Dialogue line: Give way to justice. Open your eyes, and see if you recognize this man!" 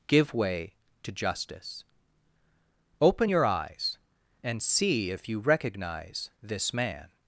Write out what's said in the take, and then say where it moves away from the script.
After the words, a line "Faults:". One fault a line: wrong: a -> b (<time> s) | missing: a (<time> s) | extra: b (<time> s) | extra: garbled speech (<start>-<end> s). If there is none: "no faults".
Give way to justice. Open your eyes, and see if you recognize this man!"
Faults:
no faults